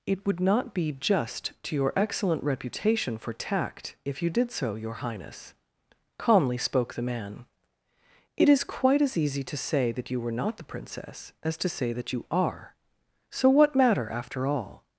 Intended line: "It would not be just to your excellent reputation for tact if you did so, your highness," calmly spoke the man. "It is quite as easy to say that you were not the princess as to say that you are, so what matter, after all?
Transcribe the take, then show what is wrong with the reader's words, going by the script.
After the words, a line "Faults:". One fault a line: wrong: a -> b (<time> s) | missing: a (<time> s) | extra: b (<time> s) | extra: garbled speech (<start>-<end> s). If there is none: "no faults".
"It would not be just to your excellent reputation for tact if you did so, your highness," calmly spoke the man. "It is quite as easy to say that you were not the princess as to say that you are, so what matter, after all?
Faults:
no faults